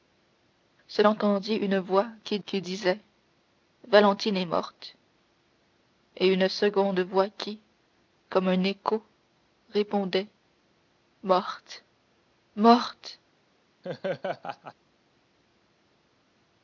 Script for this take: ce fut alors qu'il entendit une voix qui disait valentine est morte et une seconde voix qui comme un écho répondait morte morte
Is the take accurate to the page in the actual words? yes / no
no